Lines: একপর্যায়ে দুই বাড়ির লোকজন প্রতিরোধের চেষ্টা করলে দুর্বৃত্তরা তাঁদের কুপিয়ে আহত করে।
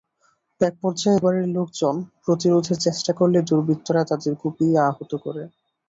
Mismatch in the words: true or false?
true